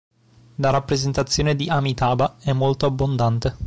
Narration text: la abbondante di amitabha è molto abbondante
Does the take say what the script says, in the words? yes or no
no